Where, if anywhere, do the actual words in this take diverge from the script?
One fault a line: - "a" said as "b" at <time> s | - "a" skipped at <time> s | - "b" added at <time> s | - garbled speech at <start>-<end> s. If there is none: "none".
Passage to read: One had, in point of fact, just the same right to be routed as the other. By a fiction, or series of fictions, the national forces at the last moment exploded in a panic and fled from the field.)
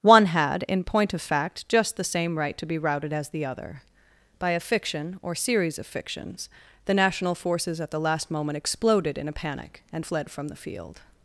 none